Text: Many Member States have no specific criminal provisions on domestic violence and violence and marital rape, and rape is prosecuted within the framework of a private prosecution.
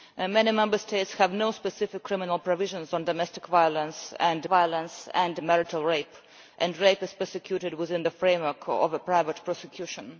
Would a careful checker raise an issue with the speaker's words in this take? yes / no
no